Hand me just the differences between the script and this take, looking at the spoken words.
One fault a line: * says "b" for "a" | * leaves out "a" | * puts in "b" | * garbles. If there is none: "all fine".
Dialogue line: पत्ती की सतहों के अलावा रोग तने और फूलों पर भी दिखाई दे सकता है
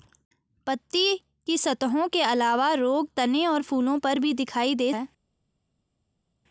* leaves out "सकता"